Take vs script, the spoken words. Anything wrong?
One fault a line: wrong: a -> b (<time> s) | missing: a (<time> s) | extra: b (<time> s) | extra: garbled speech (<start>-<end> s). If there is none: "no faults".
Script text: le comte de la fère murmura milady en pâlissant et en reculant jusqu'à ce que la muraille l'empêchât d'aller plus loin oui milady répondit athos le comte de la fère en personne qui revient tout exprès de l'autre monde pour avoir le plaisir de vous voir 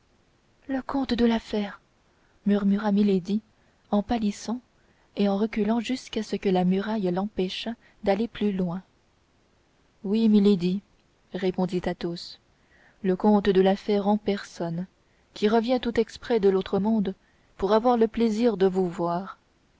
no faults